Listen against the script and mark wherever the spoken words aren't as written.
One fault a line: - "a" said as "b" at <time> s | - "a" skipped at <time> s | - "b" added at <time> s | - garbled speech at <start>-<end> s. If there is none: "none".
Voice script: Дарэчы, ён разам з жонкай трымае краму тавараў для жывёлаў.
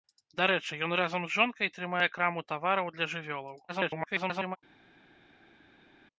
- garbled speech at 3.7-4.6 s